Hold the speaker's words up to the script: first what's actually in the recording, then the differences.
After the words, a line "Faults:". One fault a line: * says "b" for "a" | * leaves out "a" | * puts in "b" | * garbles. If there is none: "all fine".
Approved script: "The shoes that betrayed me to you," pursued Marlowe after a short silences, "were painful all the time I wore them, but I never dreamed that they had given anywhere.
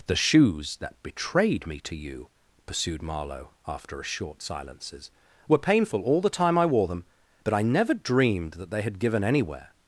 "The shoes that betrayed me to you," pursued Marlowe after a short silences, "were painful all the time I wore them, but I never dreamed that they had given anywhere.
Faults:
all fine